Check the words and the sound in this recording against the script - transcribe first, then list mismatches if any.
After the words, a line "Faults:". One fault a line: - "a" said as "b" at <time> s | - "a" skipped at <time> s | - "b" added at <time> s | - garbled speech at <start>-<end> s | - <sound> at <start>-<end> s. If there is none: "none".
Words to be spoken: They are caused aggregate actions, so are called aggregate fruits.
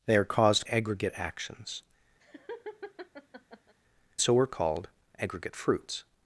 They are caused aggregate actions, so are called aggregate fruits.
Faults:
- laugh at 2.2-3.7 s